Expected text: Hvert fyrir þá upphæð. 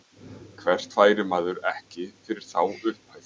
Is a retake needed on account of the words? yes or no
yes